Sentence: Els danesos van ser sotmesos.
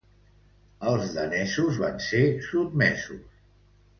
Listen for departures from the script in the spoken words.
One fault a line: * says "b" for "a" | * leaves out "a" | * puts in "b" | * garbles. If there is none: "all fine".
all fine